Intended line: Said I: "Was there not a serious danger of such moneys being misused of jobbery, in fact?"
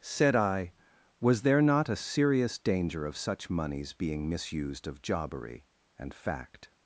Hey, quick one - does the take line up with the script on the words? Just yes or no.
no